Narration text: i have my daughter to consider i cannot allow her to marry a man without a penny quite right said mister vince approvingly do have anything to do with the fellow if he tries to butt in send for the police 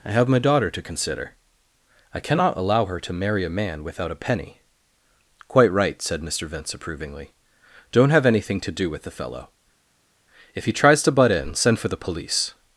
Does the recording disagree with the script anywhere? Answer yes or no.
yes